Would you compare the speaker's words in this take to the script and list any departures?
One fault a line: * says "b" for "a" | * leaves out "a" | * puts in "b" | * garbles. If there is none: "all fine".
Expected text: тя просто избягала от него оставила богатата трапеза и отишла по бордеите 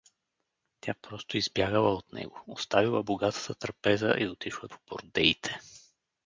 all fine